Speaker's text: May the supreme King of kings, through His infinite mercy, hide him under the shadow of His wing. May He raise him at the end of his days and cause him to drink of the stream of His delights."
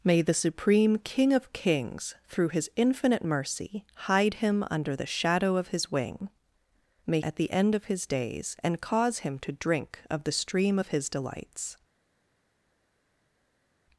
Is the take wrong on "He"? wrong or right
wrong